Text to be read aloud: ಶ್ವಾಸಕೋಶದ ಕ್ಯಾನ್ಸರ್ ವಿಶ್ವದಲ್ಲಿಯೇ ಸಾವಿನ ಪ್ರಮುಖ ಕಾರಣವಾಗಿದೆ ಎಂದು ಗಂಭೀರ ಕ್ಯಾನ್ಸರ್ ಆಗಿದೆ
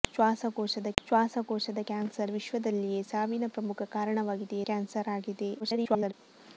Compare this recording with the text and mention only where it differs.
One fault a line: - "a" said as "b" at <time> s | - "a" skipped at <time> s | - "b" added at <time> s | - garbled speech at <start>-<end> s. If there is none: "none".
- "ಶ್ವಾಸಕೋಶದ" added at 1.0 s
- "ಎಂದು ಗಂಭೀರ" skipped at 4.6 s
- garbled speech at 5.6-6.1 s